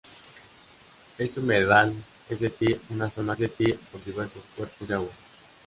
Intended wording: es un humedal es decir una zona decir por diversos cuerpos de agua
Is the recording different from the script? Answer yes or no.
no